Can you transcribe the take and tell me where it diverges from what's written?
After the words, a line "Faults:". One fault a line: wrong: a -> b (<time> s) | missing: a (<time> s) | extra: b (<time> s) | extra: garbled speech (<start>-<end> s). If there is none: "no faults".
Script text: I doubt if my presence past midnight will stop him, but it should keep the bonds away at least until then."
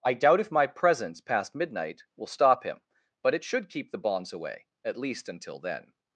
I doubt if my presence past midnight will stop him, but it should keep the bonds away at least until then."
Faults:
no faults